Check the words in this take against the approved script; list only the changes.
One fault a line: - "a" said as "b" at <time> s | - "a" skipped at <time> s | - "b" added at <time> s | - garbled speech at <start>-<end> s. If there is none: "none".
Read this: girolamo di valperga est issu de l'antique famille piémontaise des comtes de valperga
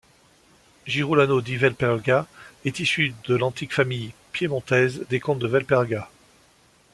none